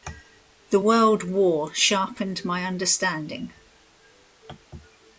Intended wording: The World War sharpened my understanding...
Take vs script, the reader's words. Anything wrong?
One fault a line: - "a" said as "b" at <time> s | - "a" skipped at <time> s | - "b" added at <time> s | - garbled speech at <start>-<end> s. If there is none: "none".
none